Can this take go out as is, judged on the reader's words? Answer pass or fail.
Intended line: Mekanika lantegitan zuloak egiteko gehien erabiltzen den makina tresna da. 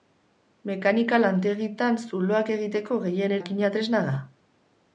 fail